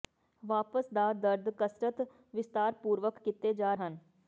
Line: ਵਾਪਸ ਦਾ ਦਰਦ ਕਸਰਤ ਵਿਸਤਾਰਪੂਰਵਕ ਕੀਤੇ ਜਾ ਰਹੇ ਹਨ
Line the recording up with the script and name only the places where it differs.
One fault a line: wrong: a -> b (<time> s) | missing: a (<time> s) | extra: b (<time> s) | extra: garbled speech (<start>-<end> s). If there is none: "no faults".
missing: ਰਹੇ (3.8 s)